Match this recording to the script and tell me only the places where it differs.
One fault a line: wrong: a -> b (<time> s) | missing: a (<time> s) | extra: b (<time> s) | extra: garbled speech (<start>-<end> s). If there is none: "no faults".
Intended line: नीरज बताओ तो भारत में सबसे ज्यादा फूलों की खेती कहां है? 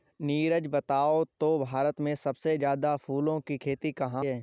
no faults